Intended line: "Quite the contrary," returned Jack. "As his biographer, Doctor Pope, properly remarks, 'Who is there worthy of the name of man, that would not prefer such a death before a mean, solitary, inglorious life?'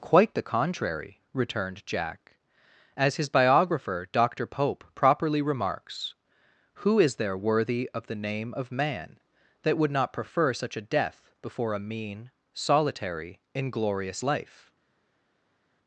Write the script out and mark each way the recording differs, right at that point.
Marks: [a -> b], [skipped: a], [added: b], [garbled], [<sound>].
"Quite the contrary," returned Jack. "As his biographer, Doctor Pope, properly remarks, 'Who is there worthy of the name of man, that would not prefer such a death before a mean, solitary, inglorious life?'